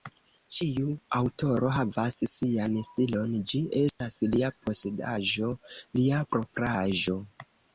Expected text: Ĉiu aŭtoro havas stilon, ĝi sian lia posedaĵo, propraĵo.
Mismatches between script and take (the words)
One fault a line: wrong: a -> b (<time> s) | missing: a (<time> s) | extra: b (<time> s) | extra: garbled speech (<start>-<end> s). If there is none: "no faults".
extra: sian (2.3 s)
wrong: sian -> estas (3.8 s)
extra: lia (6.0 s)